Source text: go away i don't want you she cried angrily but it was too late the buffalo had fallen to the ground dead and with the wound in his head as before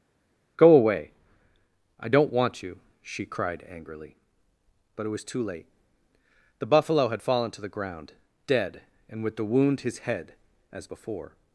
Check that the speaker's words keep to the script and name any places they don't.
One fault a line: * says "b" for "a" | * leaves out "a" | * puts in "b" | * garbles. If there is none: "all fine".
* leaves out "in"